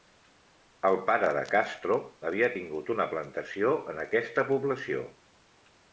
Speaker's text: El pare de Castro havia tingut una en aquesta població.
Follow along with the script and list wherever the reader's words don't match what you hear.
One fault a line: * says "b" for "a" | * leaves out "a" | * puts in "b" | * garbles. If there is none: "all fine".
* puts in "plantació"